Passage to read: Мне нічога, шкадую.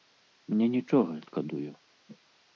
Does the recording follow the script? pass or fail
pass